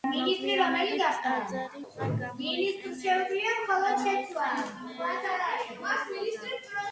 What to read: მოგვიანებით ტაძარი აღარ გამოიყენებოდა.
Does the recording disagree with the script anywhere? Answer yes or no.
no